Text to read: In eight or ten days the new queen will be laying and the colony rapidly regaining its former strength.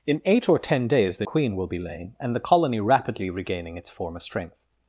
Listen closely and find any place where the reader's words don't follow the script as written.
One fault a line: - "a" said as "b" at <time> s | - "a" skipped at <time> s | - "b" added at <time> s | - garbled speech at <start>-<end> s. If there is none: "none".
- "new" skipped at 1.3 s